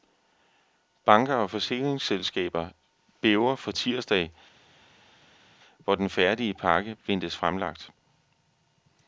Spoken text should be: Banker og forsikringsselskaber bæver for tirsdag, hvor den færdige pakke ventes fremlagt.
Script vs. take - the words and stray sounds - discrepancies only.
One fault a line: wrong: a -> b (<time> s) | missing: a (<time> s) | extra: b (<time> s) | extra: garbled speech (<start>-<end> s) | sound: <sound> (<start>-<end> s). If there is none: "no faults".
no faults